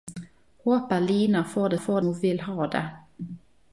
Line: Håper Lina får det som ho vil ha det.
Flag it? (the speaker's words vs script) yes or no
yes